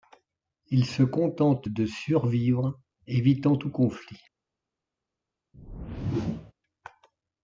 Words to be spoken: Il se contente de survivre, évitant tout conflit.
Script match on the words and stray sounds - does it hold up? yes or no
no